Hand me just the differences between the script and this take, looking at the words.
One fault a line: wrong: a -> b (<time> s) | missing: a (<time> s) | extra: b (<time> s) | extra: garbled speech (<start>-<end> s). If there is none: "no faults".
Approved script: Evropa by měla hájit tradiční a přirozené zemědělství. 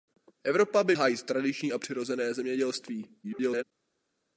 missing: měla (0.9 s)
extra: garbled speech (3.2-3.6 s)